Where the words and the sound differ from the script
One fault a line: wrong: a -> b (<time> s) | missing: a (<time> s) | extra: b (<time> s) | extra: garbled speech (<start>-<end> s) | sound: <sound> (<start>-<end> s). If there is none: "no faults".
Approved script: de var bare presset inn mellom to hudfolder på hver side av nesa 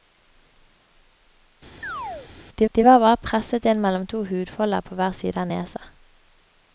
sound: chirp (1.8-2.3 s)
extra: de (2.7 s)